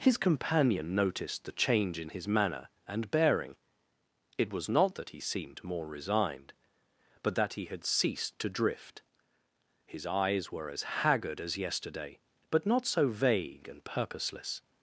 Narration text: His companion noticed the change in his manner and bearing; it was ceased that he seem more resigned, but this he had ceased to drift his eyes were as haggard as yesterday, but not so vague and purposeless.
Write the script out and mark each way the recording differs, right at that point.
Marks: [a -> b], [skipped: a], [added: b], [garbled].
His companion noticed the change in his manner and bearing; it was [ceased -> not] that he [seem -> seemed] more resigned, but [this -> that] he had ceased to drift his eyes were as haggard as yesterday, but not so vague and purposeless.